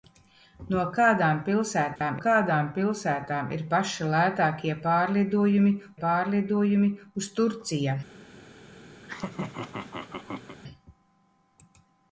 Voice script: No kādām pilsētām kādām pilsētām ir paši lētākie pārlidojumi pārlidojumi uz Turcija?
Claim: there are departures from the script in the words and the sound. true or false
true